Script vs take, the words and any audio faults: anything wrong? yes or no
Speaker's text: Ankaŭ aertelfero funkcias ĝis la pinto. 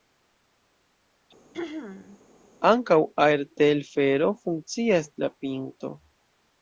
yes